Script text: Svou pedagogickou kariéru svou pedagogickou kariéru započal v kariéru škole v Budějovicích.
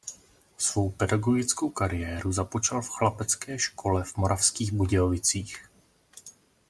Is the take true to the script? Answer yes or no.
no